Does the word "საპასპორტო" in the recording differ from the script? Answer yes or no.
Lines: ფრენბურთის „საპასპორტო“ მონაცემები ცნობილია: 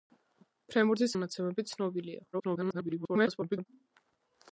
yes